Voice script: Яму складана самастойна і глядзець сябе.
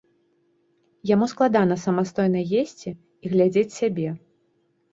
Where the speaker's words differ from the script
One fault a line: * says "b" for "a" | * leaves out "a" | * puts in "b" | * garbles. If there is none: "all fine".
* puts in "есці"